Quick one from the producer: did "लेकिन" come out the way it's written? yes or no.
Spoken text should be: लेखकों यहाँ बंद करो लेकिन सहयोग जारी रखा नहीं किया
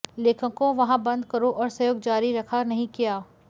no